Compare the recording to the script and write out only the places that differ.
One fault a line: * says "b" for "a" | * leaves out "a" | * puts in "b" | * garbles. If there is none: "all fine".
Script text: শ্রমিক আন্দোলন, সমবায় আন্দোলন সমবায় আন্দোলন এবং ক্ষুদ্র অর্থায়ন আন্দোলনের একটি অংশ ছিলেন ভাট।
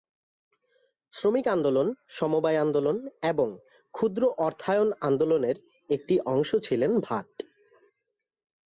* leaves out "সমবায় আন্দোলন"